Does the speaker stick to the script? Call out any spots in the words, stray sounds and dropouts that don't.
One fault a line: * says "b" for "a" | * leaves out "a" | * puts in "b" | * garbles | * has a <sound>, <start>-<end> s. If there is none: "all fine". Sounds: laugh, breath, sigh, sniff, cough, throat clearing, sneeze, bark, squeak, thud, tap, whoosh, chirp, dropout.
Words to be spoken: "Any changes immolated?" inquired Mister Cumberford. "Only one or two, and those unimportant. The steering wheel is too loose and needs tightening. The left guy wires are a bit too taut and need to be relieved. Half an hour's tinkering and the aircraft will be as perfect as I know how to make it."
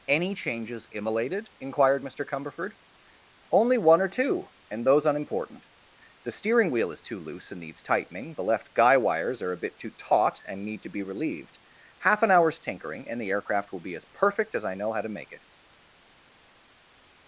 all fine